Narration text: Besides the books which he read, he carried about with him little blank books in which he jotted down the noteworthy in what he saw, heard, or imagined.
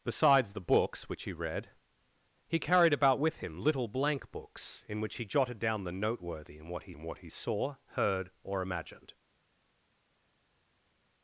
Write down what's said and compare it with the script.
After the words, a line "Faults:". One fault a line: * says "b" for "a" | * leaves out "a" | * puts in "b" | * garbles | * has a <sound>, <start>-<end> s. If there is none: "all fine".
Besides the books which he read, he carried about with him little blank books in which he jotted down the noteworthy in what he in what he saw, heard, or imagined.
Faults:
* puts in "in what he"